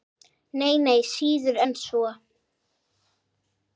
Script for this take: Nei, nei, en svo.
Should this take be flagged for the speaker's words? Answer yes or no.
yes